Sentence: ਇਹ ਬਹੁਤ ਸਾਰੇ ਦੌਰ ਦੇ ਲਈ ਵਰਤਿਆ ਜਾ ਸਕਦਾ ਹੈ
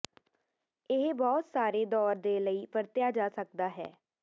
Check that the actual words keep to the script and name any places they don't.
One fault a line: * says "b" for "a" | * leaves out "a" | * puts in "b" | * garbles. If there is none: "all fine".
all fine